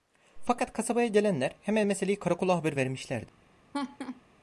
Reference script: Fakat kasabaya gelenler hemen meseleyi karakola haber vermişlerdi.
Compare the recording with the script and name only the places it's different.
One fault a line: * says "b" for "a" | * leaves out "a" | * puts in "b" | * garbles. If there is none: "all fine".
all fine